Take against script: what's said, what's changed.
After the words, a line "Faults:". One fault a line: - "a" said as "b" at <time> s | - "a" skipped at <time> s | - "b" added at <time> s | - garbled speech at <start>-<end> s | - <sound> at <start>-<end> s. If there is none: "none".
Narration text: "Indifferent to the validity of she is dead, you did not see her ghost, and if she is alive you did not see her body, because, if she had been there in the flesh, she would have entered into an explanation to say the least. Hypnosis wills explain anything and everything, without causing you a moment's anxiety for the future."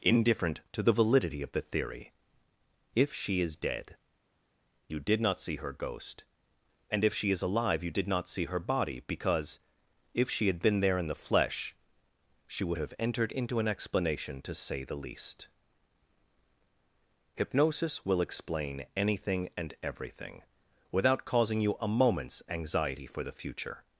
"Indifferent to the validity of the theory. If she is dead, you did not see her ghost, and if she is alive you did not see her body, because, if she had been there in the flesh, she would have entered into an explanation to say the least. Hypnosis will explain anything and everything, without causing you a moment's anxiety for the future."
Faults:
- "the theory If" added at 1.5 s
- "wills" said as "will" at 18.0 s